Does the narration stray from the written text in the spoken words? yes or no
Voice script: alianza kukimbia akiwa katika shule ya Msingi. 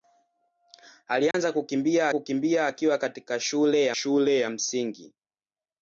yes